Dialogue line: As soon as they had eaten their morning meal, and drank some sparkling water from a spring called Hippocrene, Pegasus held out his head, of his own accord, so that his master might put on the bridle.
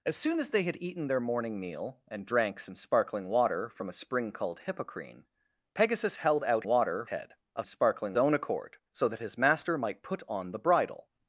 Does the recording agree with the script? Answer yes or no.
no